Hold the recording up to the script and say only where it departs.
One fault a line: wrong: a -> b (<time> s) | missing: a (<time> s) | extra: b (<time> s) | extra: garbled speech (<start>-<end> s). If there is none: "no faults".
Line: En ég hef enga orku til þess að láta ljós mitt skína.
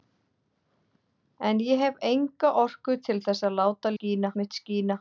wrong: ljós -> skína (3.9 s)